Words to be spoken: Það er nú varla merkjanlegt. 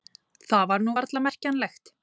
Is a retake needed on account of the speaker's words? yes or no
yes